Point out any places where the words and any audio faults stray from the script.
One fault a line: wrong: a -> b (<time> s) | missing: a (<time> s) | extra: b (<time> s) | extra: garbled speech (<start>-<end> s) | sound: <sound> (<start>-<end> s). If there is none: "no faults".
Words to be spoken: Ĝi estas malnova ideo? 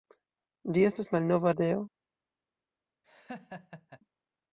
sound: laugh (3.0-4.0 s)